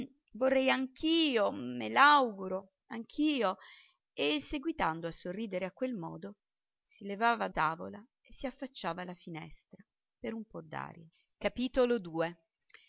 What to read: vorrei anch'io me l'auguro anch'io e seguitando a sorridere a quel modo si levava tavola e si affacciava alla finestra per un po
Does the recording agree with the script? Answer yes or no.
yes